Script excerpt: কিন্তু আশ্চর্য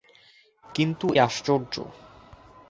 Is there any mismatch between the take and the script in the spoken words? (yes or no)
no